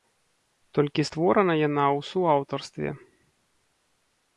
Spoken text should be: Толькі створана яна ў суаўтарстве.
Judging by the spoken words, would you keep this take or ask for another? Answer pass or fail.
pass